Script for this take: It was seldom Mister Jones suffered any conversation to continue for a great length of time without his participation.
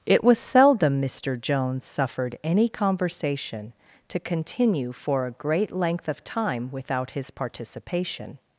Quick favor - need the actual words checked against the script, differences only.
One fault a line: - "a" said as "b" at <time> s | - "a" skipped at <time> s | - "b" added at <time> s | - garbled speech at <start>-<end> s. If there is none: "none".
none